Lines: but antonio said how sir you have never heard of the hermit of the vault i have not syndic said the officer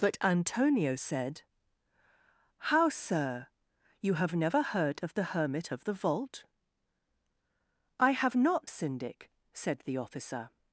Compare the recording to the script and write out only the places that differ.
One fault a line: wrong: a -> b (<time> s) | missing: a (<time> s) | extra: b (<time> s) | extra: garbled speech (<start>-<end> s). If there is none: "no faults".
no faults